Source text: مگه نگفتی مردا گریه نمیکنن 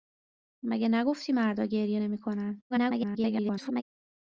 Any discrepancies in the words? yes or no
yes